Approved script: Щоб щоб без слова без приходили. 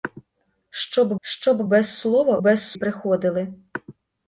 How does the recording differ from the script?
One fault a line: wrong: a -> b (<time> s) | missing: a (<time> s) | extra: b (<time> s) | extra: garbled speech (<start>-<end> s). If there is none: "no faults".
no faults